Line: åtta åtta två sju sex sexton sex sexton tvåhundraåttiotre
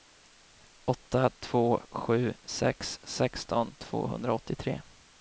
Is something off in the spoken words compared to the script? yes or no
yes